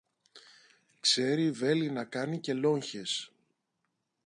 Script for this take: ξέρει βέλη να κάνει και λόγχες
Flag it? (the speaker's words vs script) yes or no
no